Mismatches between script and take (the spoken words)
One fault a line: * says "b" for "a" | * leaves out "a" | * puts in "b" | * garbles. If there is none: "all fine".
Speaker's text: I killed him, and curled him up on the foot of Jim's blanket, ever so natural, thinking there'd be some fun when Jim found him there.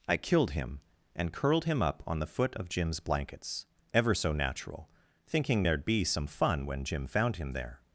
* says "blankets" for "blanket"